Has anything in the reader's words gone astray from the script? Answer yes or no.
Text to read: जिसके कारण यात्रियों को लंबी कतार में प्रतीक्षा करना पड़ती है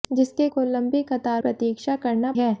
yes